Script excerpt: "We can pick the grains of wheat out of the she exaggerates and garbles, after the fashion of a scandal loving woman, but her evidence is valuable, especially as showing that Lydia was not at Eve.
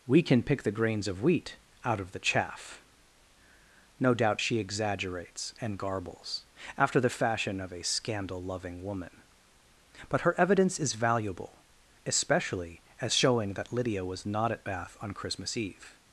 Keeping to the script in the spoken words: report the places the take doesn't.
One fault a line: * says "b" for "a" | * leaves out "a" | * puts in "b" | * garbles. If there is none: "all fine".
* puts in "chaff No doubt"
* puts in "Bath on Christmas"